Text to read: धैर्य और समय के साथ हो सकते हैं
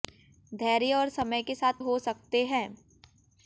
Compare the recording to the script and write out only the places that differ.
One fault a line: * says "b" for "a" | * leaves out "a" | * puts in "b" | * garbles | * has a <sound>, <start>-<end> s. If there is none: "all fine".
all fine